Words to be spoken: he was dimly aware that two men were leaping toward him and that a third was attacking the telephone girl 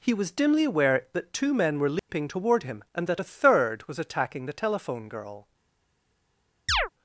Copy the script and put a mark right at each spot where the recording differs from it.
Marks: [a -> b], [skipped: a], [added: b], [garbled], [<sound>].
he was dimly aware that two men were leaping [dropout] toward him and that a third was attacking the telephone girl [chirp]